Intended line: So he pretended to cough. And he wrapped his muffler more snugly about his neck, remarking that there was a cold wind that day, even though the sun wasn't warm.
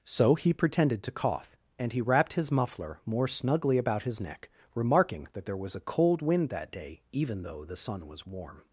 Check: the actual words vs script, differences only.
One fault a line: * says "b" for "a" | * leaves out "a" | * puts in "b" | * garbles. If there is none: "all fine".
* says "was" for "wasn't"